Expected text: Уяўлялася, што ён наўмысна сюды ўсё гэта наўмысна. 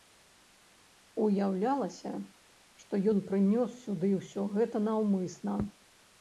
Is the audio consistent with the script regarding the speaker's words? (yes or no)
no